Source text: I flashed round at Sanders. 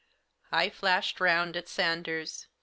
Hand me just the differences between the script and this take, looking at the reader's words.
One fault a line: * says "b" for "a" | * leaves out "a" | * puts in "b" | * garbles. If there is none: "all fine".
all fine